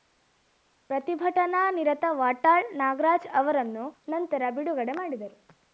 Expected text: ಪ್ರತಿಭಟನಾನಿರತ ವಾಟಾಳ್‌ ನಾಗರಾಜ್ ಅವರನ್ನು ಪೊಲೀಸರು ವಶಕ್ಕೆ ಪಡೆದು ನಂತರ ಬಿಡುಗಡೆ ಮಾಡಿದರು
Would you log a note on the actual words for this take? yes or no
yes